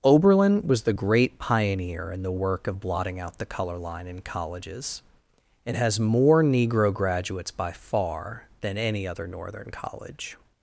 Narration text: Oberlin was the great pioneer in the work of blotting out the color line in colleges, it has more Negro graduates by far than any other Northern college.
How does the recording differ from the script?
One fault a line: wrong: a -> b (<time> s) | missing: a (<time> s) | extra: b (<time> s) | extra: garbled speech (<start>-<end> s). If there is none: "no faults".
no faults